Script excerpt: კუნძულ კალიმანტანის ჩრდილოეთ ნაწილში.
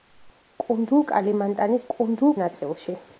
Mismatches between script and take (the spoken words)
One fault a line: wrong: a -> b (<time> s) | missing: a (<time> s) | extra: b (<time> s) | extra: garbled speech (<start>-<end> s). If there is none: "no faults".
wrong: ჩრდილოეთ -> კუნძულ (1.9 s)